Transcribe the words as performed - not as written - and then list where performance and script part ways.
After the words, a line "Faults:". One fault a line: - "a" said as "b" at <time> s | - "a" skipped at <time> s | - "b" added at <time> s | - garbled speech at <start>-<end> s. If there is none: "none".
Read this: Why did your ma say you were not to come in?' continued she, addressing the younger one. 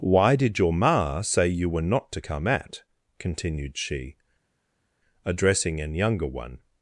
Why did your ma say you were not to come at?' continued she, addressing an younger one.
Faults:
- "in" said as "at" at 2.5 s
- "the" said as "an" at 5.8 s